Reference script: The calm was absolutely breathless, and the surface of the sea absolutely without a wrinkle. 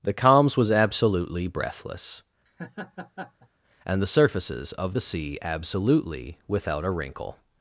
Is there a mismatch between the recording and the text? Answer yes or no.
yes